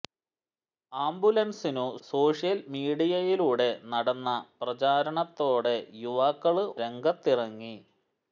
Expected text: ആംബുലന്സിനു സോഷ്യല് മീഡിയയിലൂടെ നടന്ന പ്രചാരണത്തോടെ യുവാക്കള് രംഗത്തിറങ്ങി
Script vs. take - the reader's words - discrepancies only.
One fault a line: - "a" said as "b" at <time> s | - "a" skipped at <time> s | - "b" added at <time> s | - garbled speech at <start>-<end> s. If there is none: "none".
none